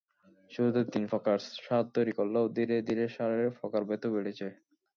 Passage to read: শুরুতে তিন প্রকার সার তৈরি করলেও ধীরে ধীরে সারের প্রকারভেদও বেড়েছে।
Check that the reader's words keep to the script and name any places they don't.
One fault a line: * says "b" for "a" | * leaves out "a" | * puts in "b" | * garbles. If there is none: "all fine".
all fine